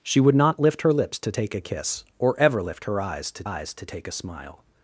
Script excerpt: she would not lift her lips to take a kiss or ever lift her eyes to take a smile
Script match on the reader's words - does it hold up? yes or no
no